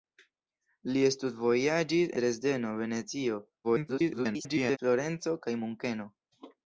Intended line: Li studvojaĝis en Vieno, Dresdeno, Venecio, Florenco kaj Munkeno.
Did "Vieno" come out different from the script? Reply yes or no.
yes